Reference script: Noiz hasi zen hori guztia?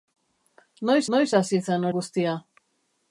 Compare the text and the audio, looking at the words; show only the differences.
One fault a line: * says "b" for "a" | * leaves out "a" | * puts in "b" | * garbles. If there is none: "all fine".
* puts in "noiz"
* leaves out "hori"